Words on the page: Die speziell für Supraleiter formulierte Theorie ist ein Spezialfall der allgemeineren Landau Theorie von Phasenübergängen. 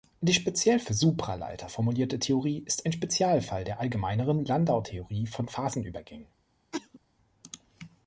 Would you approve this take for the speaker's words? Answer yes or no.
yes